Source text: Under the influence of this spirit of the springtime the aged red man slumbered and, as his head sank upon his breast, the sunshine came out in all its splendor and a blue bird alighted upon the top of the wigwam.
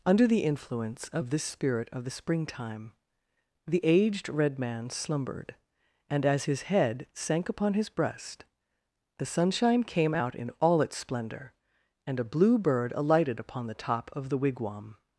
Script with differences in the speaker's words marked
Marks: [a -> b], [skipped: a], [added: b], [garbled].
Under the influence of this spirit of the springtime the aged red man slumbered and, as his head sank upon his breast, the sunshine came out in all its splendor and a blue bird alighted upon the top of the wigwam.